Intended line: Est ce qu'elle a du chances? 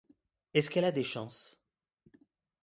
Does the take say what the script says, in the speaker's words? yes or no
no